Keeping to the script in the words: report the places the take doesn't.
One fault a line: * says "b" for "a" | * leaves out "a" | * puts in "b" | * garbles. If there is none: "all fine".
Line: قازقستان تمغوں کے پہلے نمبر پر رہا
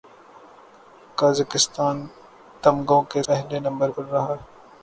all fine